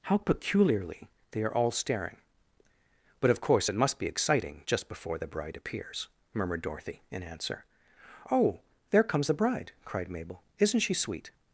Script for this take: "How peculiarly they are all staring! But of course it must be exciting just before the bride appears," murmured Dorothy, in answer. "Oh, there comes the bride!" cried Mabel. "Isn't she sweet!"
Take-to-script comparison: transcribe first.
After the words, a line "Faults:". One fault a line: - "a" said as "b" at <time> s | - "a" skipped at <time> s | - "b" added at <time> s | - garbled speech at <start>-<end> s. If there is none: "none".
"How peculiarly they are all staring! But of course it must be exciting just before the bride appears," murmured Dorothy, in answer. "Oh, there comes the bride!" cried Mabel. "Isn't she sweet!"
Faults:
none